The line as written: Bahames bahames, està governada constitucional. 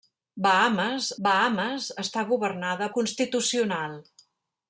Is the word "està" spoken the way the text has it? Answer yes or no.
yes